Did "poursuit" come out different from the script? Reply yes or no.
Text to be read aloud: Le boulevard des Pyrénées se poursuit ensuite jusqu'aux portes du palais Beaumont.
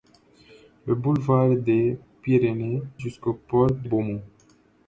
yes